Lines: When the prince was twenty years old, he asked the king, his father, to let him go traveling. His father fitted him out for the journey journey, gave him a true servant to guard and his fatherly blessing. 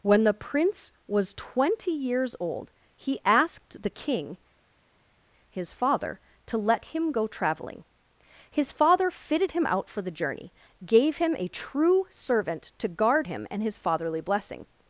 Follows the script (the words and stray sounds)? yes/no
no